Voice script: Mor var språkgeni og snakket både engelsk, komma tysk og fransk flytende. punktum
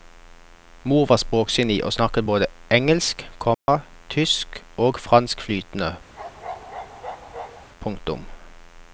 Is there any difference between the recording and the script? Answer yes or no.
no